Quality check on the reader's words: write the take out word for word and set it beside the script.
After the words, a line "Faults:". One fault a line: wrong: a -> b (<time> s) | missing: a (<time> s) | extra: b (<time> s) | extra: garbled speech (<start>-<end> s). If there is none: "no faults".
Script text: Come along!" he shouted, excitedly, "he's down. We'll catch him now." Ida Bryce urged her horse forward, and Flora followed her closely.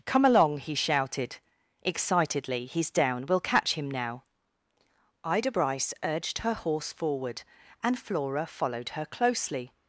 Come along!" he shouted, excitedly, "he's down. We'll catch him now." Ida Bryce urged her horse forward, and Flora followed her closely.
Faults:
no faults